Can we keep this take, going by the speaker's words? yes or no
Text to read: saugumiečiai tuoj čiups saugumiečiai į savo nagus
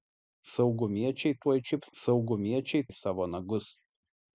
yes